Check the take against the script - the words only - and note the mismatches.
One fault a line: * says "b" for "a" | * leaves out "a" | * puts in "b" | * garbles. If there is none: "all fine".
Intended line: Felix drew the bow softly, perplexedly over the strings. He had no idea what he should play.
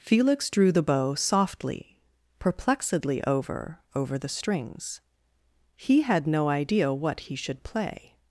* puts in "over"